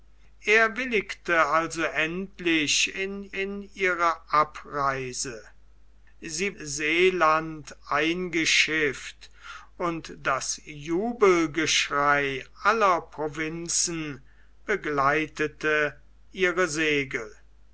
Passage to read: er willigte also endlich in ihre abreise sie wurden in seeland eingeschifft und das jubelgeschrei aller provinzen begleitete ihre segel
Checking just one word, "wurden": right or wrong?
wrong